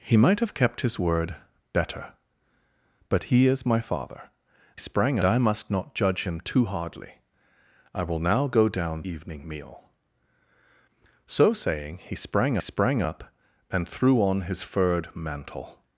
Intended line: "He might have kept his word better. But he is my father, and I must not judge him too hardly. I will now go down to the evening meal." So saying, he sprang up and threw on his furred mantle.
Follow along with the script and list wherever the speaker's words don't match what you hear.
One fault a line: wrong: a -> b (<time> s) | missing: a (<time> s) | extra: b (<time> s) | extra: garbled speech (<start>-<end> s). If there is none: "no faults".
wrong: and -> sprang (4.8 s)
missing: to the (9.0 s)
extra: sprang (12.6 s)